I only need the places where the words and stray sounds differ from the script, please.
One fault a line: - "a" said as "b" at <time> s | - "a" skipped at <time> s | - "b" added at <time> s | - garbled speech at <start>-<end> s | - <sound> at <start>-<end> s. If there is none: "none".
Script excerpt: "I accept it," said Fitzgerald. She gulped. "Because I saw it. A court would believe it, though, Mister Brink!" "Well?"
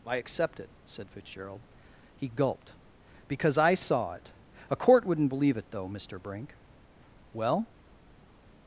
- "She" said as "He" at 2.1 s
- "would" said as "wouldn't" at 5.0 s